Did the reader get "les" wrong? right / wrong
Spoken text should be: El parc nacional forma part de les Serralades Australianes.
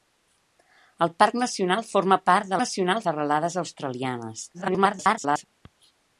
wrong